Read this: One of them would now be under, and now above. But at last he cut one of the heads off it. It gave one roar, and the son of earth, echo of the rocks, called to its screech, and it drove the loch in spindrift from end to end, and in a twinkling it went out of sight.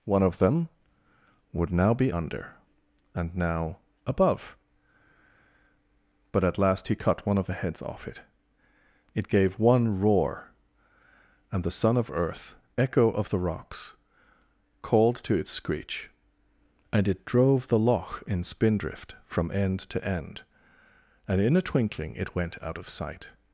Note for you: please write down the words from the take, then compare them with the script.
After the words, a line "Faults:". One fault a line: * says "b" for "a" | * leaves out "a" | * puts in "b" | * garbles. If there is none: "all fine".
One of them would now be under, and now above. But at last he cut one of the heads off it. It gave one roar, and the son of earth, echo of the rocks, called to its screech, and it drove the loch in spindrift from end to end, and in a twinkling it went out of sight.
Faults:
all fine